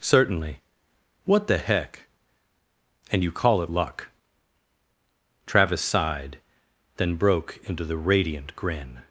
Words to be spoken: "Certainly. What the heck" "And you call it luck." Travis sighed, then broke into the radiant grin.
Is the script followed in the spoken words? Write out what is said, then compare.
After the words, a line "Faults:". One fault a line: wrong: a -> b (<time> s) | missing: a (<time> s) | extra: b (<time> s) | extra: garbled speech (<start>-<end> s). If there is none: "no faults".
"Certainly. What the heck" "And you call it luck." Travis sighed, then broke into the radiant grin.
Faults:
no faults